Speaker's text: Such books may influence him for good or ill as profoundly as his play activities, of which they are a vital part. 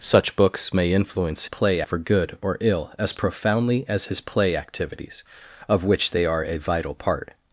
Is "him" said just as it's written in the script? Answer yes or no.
no